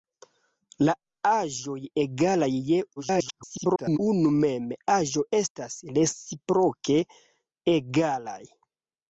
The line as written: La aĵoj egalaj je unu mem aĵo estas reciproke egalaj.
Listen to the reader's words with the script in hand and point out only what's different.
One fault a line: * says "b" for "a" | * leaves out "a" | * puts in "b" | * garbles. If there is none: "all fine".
* garbles